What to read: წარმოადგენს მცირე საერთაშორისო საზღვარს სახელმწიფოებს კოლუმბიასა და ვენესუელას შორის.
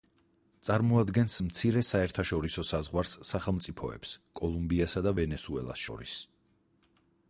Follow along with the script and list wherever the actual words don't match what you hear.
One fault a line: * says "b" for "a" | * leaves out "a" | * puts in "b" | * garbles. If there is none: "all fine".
all fine